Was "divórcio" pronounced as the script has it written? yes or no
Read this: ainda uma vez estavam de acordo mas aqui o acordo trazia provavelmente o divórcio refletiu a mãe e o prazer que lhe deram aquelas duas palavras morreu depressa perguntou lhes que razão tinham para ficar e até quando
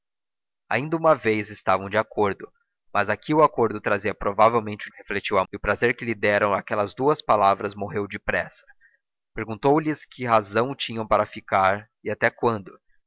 no